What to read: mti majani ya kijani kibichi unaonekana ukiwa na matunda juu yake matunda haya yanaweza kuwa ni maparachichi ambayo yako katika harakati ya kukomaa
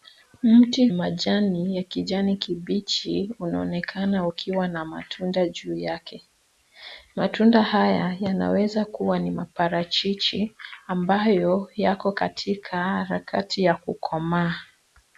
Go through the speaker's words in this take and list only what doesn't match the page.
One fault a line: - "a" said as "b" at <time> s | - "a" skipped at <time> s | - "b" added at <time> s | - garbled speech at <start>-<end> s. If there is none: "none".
none